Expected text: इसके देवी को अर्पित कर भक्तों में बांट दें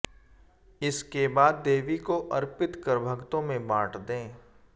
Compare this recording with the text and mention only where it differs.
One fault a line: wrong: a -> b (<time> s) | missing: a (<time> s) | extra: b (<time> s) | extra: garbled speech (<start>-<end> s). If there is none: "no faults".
extra: बाद (1.3 s)